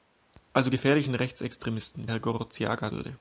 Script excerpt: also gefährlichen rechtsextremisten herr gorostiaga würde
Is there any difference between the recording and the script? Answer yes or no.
no